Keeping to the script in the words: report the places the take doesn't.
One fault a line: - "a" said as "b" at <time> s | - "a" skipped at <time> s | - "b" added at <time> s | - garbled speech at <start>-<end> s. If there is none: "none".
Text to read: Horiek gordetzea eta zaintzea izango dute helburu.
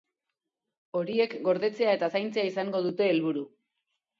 none